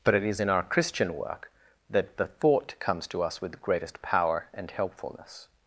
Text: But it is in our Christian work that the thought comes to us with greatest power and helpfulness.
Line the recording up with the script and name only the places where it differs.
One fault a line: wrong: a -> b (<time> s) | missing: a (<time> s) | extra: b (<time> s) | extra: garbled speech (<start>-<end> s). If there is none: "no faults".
no faults